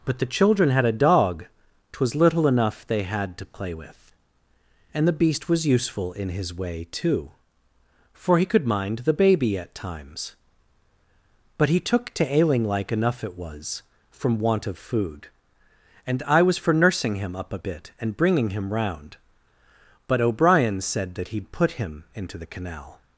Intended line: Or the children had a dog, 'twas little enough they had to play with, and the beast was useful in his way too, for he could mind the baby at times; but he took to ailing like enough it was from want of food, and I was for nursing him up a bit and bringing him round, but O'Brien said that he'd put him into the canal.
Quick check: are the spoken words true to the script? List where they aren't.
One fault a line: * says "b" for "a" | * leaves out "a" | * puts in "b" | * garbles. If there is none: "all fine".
* says "But" for "Or"